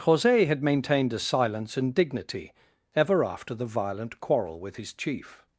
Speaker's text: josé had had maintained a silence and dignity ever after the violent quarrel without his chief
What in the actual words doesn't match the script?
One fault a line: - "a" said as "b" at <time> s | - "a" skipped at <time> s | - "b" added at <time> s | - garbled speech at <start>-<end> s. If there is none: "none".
- "had" skipped at 0.6 s
- "without" said as "with" at 4.6 s